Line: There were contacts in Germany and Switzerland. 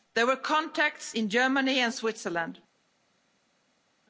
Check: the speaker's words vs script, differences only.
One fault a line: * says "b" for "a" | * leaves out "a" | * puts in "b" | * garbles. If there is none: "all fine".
all fine